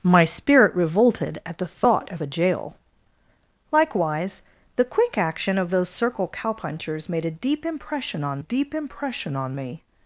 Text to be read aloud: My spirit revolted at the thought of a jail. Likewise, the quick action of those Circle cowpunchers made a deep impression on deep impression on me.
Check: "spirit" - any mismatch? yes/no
no